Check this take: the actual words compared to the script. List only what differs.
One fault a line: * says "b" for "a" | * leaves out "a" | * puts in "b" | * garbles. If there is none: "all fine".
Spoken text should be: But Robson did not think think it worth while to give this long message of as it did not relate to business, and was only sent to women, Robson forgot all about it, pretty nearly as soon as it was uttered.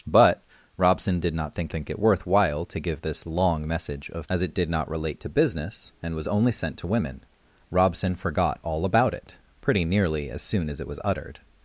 all fine